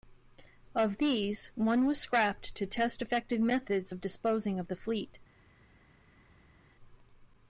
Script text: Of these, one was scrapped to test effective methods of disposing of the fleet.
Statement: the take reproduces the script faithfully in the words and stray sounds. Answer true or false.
true